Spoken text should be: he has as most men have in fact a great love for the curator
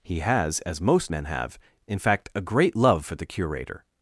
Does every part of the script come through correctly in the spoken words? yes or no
yes